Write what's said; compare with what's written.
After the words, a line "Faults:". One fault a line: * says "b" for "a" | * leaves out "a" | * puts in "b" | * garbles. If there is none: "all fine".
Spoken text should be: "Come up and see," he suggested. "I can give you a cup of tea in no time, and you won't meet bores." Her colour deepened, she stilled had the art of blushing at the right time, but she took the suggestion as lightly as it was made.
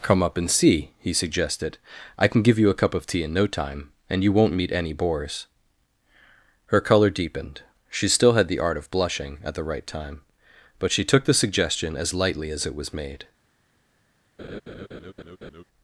"Come up and see," he suggested. "I can give you a cup of tea in no time, and you won't meet any bores." Her colour deepened, she still had the art of blushing at the right time, but she took the suggestion as lightly as it was made.
Faults:
* puts in "any"
* says "still" for "stilled"